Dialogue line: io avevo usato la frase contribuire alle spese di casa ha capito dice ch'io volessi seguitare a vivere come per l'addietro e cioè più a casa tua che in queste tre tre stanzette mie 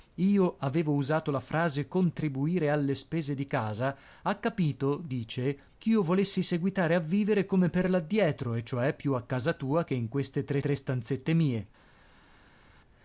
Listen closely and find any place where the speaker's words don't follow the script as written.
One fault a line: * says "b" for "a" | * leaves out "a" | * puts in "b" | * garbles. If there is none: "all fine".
all fine